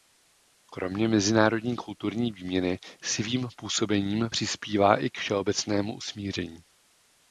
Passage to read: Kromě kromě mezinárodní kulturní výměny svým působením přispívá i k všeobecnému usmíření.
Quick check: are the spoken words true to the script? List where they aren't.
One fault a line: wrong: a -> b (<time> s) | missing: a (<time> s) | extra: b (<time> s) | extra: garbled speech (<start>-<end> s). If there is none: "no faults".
missing: kromě (1.1 s)